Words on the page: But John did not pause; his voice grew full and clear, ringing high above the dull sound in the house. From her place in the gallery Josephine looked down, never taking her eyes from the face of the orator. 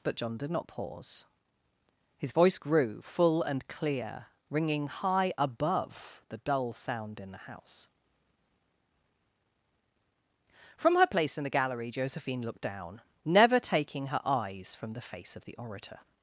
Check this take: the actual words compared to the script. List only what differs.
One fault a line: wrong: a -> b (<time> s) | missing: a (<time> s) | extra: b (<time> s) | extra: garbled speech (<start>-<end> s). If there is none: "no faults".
no faults